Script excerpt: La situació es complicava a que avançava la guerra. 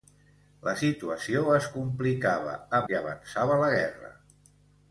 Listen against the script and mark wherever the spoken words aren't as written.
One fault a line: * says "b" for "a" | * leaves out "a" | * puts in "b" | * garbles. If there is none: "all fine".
all fine